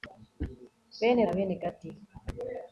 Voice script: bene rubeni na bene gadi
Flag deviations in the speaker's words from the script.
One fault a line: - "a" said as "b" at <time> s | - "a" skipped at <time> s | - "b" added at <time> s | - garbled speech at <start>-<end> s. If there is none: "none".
- "rubeni" skipped at 1.2 s